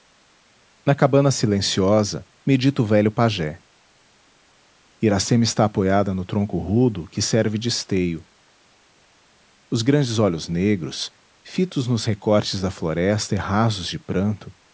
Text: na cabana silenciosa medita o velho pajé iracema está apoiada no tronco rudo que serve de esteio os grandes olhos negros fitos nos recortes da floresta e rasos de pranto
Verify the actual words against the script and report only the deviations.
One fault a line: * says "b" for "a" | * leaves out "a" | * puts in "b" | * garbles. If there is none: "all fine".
all fine